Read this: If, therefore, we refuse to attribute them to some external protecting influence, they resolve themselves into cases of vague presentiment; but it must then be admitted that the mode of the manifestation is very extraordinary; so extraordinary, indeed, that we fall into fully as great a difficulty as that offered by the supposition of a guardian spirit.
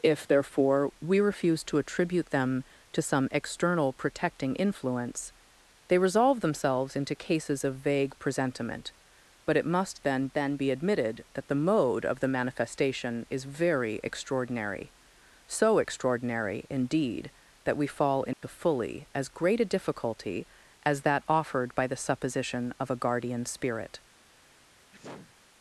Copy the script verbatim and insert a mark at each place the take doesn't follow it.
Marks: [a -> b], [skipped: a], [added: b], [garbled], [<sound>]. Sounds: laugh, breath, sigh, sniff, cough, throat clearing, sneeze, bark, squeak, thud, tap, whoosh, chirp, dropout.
If, therefore, we refuse to attribute them to some external protecting influence, they resolve themselves into cases of vague presentiment; but it must then [added: then] be admitted that the mode of the manifestation is very extraordinary; so extraordinary, indeed, that we fall into [dropout] fully as great a difficulty as that offered by the supposition of a guardian spirit. [sneeze]